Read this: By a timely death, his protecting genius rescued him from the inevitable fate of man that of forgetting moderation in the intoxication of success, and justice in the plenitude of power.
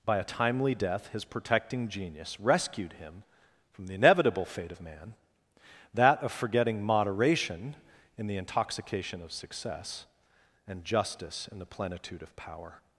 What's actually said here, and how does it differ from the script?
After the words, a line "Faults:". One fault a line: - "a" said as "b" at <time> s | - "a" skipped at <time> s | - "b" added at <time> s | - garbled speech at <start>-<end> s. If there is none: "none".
By a timely death, his protecting genius rescued him from the inevitable fate of man that of forgetting moderation in the intoxication of success, and justice in the plenitude of power.
Faults:
none